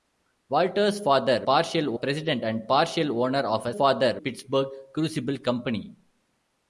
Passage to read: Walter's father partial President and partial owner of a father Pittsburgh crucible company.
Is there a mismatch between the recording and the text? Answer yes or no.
no